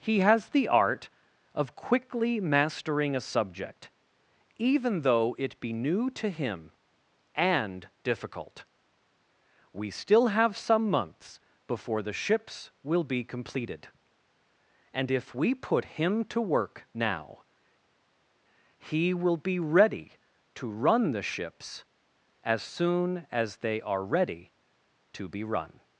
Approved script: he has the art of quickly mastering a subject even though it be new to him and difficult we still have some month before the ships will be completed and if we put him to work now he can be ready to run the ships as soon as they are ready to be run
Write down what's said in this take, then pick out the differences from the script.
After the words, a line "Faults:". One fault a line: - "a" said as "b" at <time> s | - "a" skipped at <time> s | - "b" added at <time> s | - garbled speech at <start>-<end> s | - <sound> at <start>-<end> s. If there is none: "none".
he has the art of quickly mastering a subject even though it be new to him and difficult we still have some months before the ships will be completed and if we put him to work now he will be ready to run the ships as soon as they are ready to be run
Faults:
- "month" said as "months" at 10.9 s
- "can" said as "will" at 19.1 s